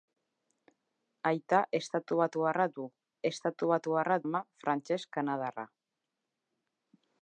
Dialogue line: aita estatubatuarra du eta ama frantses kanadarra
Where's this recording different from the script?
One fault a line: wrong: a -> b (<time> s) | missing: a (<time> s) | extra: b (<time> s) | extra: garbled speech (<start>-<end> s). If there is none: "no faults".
wrong: eta -> estatubatuarra (3.3 s)